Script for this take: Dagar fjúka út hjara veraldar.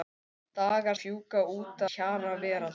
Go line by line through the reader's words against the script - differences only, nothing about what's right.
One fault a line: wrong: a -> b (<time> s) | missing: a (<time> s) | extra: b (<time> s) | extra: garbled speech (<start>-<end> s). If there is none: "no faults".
no faults